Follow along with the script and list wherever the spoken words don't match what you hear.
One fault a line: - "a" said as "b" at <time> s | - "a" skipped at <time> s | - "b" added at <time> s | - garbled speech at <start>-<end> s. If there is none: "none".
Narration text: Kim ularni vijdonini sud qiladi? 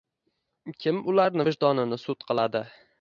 none